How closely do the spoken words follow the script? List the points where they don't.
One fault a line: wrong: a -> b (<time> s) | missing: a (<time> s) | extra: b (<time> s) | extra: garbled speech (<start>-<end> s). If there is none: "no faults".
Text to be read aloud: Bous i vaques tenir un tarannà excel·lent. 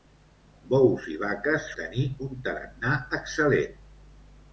no faults